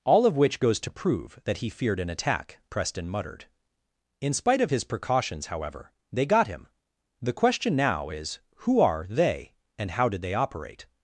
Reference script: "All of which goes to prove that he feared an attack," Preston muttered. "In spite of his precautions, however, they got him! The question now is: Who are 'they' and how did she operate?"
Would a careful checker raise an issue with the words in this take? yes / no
yes